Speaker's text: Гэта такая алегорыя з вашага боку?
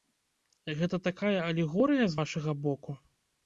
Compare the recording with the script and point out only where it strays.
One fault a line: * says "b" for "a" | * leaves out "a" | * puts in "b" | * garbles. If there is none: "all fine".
all fine